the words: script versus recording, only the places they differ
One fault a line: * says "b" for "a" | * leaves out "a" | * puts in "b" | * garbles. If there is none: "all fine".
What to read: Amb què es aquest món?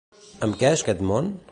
all fine